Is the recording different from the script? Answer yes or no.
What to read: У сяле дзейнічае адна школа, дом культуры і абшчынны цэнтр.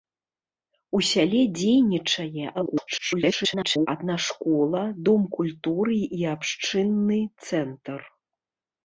yes